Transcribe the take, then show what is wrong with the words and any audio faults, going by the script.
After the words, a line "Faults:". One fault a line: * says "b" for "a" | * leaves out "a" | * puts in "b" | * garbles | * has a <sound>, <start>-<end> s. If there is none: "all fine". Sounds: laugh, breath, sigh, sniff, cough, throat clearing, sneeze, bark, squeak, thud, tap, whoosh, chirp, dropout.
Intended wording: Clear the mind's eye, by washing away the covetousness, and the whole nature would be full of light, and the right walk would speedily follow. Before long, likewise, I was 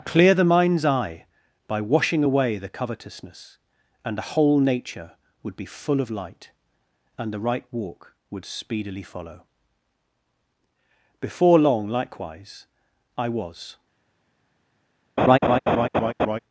Clear the mind's eye, by washing away the covetousness, and the whole nature would be full of light, and the right walk would speedily follow. Before long, likewise, I was
Faults:
* has a laugh, 15.2-16.4 s